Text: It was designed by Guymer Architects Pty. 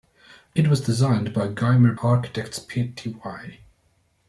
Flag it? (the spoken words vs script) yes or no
no